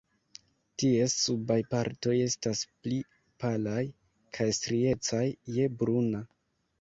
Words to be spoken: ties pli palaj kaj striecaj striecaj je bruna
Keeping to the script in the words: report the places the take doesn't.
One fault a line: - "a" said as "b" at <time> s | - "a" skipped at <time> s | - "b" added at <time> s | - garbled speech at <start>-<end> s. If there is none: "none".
- "subaj partoj estas" added at 1.2 s
- "striecaj" skipped at 5.2 s